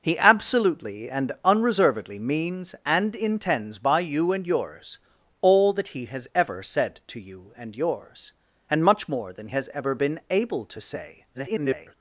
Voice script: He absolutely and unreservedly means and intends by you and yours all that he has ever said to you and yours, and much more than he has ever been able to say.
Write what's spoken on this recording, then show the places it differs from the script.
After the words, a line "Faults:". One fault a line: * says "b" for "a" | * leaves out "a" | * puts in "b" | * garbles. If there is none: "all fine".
He absolutely and unreservedly means and intends by you and yours all that he has ever said to you and yours, and much more than has ever been able to say. [garbled]
Faults:
* leaves out "he"
* garbles